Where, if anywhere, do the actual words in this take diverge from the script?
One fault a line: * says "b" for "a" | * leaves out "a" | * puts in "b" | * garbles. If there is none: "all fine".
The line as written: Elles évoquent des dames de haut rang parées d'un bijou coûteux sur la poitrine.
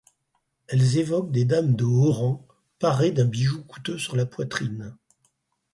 all fine